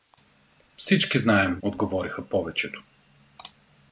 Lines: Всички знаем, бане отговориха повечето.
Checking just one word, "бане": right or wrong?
wrong